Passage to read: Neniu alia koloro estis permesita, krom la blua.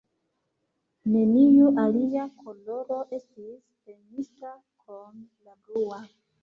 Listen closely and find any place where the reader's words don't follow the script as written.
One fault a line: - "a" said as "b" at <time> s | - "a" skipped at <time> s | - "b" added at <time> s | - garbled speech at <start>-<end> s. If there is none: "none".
none